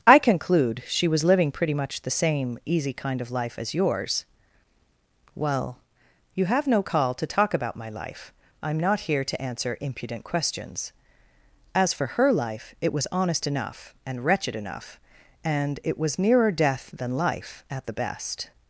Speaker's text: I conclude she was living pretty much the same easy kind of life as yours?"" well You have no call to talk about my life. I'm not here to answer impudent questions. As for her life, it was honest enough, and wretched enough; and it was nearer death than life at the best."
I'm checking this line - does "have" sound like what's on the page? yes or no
yes